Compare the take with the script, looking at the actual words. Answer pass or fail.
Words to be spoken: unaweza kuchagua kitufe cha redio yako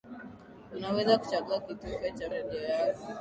pass